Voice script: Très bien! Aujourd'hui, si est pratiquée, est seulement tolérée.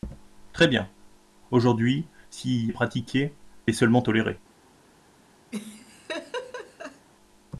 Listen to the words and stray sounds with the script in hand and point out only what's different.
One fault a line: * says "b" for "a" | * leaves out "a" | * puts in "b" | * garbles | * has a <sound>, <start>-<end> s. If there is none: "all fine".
* has a laugh, 5.5-7.1 s